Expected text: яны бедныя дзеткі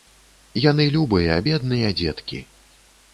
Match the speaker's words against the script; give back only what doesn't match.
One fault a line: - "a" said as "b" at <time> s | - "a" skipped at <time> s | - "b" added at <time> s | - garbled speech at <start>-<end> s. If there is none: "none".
- "любыя" added at 0.9 s